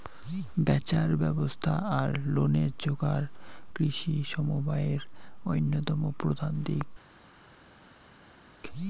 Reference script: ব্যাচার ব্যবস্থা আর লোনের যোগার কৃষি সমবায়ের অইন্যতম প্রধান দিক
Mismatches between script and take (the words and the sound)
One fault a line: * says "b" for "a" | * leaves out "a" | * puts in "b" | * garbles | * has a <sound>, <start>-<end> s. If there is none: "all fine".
all fine